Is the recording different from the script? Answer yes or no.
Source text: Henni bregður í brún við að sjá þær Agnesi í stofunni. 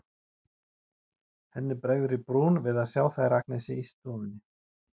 no